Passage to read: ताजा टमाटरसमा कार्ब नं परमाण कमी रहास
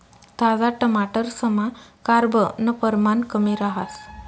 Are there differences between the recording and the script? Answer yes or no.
no